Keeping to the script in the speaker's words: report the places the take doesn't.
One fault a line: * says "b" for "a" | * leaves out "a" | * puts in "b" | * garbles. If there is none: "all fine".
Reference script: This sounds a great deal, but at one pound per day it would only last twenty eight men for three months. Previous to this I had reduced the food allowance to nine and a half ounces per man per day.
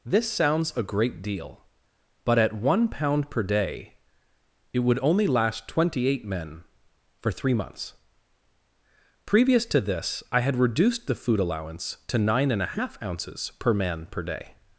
all fine